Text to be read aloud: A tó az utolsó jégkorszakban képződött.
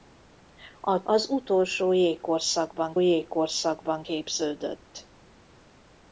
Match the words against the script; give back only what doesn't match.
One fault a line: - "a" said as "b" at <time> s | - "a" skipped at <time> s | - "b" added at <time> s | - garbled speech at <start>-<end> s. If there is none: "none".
- "tó" skipped at 1.0 s
- "jégkorszakban" added at 3.0 s